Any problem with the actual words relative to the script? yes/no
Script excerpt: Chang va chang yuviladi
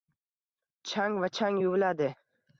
no